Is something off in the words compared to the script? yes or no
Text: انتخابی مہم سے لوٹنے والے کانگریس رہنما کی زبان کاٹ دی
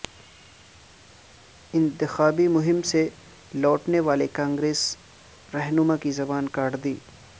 no